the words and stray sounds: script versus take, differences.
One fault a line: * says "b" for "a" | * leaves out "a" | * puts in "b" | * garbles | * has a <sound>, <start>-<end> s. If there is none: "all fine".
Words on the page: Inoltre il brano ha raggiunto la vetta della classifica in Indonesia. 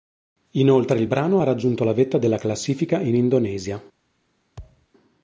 * has a thud, 4.6-4.9 s